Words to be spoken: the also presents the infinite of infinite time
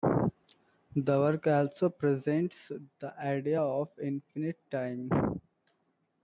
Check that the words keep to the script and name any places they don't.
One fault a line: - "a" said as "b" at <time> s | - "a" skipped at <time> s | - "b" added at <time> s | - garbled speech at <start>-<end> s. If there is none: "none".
- "work" added at 1.2 s
- "infinite" said as "idea" at 3.2 s